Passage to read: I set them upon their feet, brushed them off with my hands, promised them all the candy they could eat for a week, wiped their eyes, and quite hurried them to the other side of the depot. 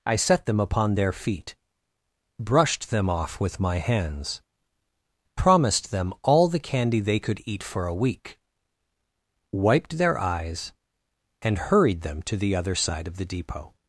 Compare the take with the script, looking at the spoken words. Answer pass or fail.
fail